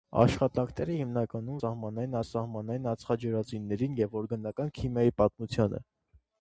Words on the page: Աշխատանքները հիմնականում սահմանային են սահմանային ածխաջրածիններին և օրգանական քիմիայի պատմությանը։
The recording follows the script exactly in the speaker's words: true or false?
true